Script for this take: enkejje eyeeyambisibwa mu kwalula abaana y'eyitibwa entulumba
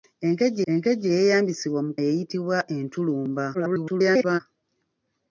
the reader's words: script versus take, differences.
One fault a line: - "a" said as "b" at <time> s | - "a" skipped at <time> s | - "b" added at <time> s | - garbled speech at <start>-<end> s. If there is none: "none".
- "enkejje" added at 0.7 s
- "kwalula abaana" skipped at 1.9 s
- garbled speech at 3.5-4.4 s